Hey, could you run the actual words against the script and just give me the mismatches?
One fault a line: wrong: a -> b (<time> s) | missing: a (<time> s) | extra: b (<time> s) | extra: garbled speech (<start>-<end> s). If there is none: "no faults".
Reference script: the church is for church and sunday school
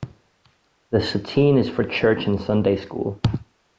wrong: church -> sateen (1.0 s)